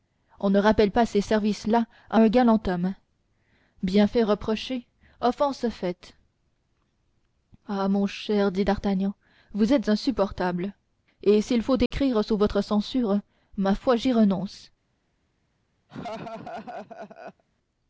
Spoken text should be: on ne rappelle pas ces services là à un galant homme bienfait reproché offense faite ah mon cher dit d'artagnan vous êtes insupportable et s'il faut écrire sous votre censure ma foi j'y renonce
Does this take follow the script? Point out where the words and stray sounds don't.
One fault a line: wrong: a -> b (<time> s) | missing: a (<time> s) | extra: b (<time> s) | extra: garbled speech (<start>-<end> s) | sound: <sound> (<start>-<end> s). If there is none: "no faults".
sound: dropout (11.9-11.9 s)
sound: laugh (15.9-17.4 s)